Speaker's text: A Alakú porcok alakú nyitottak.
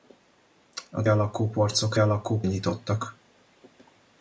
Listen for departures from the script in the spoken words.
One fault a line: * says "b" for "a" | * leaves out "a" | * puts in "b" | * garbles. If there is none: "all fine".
all fine